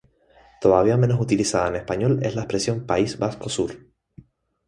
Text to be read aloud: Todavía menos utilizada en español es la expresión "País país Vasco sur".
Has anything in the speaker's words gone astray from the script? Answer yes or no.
yes